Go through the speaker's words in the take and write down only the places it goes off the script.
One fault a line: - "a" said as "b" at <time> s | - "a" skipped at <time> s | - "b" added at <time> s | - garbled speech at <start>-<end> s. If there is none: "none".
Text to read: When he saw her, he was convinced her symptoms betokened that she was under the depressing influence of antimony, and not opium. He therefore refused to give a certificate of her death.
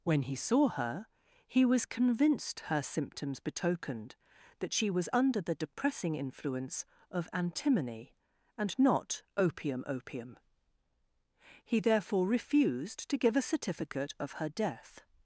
- "opium" added at 9.8 s